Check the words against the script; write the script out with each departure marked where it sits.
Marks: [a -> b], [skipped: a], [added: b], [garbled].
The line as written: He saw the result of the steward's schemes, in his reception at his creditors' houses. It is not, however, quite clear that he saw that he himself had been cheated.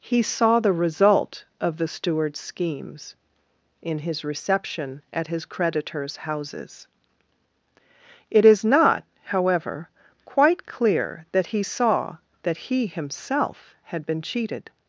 He saw the result of the steward's schemes, in his reception at his creditors' houses. It is not, however, quite clear that he saw that he himself had been cheated.